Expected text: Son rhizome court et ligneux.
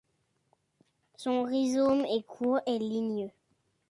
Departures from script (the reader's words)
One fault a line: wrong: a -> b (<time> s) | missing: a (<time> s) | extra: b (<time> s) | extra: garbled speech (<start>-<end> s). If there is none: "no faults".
extra: est (2.0 s)